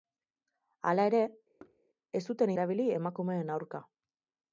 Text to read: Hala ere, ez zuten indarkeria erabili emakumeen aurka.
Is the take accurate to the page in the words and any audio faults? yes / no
no